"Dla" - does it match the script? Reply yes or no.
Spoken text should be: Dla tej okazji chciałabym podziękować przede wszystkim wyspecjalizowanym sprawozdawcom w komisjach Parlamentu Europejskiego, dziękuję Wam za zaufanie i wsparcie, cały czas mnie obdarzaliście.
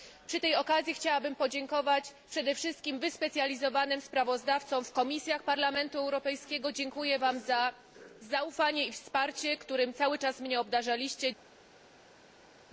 no